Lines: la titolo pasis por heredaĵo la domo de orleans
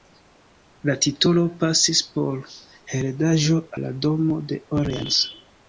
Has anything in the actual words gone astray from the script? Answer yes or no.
no